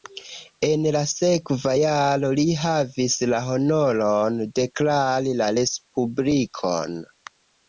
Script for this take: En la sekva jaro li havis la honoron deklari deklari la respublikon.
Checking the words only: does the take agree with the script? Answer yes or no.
no